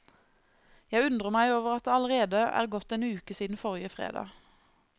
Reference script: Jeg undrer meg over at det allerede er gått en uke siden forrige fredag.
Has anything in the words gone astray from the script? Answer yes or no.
no